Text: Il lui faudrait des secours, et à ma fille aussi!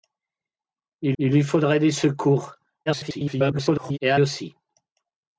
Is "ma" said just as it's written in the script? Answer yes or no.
no